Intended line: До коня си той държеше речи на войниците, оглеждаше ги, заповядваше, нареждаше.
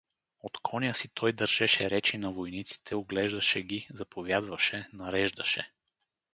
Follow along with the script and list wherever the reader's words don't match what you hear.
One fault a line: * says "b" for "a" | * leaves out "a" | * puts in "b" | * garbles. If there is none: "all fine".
* says "От" for "До"